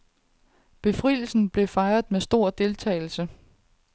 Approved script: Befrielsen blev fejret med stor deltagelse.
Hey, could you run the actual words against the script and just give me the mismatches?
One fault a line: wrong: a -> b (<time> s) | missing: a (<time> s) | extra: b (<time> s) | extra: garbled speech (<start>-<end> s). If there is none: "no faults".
no faults